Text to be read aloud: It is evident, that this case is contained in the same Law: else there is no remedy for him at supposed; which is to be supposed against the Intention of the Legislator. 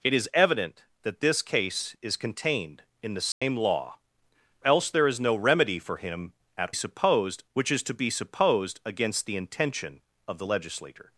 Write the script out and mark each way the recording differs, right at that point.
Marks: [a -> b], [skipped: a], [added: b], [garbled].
It is evident, that this case is contained in the same Law: else there is no remedy for him at supposed; which is to be supposed against the Intention of the Legislator.